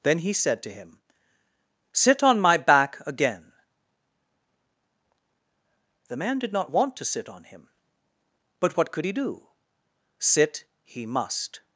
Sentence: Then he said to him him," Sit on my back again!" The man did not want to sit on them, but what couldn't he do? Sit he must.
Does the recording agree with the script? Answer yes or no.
no